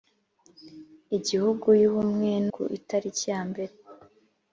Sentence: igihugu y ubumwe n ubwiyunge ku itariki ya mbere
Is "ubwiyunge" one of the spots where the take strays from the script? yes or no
yes